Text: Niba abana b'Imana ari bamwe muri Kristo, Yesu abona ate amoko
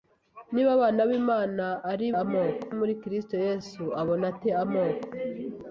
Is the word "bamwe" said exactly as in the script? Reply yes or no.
no